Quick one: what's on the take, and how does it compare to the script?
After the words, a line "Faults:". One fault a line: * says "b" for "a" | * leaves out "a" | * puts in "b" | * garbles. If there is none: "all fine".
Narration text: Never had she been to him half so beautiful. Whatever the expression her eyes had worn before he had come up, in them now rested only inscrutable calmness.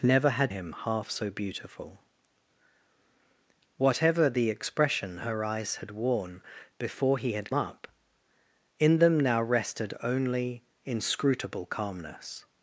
Never had him half so beautiful. Whatever the expression her eyes had worn before he had up, in them now rested only inscrutable calmness.
Faults:
* leaves out "she been to"
* leaves out "come"